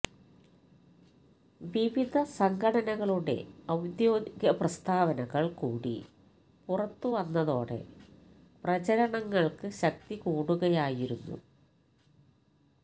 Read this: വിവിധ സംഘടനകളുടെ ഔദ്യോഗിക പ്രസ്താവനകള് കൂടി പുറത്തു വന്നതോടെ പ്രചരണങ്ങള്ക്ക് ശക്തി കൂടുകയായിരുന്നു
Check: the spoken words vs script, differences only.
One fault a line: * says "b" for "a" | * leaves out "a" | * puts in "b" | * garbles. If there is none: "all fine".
all fine